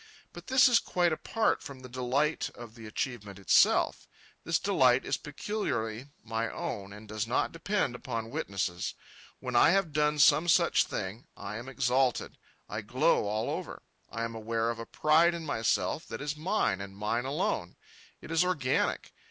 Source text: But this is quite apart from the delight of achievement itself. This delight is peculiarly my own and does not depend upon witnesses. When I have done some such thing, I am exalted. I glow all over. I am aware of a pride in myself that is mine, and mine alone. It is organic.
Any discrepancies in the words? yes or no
yes